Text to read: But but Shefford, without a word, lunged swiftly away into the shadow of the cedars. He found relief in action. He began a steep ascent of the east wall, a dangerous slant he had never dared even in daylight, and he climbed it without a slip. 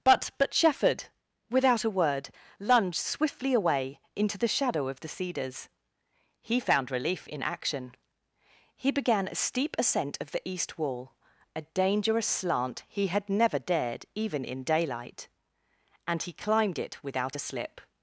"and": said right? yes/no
yes